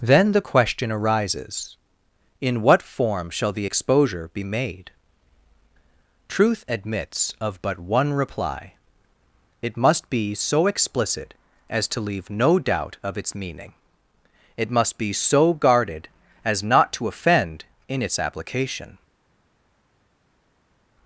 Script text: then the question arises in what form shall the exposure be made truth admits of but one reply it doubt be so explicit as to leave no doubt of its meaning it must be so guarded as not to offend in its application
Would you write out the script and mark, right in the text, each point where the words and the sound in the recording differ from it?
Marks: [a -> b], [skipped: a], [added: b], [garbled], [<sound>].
then the question arises in what form shall the exposure be made truth admits of but one reply it [doubt -> must] be so explicit as to leave no doubt of its meaning it must be so guarded as not to offend in its application